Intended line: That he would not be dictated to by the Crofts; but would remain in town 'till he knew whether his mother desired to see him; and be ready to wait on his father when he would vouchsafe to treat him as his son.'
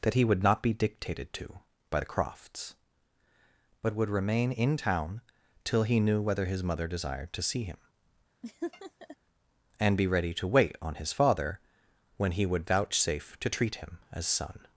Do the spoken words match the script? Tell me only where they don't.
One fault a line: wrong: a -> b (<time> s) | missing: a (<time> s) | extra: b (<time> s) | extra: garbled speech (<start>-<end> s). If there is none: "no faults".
missing: his (14.3 s)